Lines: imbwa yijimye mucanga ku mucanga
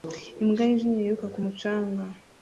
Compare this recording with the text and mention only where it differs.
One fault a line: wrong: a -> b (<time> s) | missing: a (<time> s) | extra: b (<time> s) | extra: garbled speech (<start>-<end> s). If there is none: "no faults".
wrong: mucanga -> yiruka (1.0 s)